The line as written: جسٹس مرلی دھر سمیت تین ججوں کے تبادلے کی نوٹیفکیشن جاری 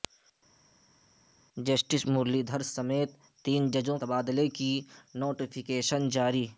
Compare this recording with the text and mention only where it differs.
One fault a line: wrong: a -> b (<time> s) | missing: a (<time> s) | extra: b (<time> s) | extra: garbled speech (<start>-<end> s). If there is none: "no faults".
missing: کے (4.0 s)